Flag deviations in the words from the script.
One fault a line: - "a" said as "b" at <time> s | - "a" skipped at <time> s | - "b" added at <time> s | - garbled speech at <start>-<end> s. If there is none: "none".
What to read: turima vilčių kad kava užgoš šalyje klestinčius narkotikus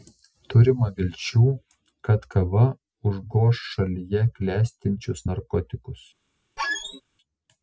none